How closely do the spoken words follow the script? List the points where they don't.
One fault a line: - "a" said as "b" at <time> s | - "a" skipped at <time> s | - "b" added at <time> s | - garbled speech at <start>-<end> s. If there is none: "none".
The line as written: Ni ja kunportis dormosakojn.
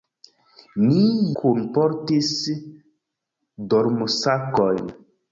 - "ja" skipped at 1.0 s